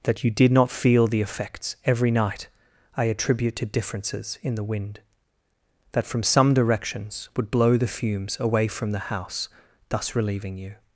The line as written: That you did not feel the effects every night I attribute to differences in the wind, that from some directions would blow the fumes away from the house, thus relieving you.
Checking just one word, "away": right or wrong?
right